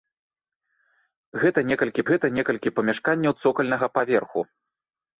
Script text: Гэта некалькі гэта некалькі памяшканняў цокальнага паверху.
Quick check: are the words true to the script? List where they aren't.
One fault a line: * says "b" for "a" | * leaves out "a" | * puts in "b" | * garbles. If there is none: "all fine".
all fine